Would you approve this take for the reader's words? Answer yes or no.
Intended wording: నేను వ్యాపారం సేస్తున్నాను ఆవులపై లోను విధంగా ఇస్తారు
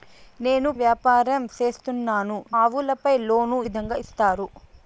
yes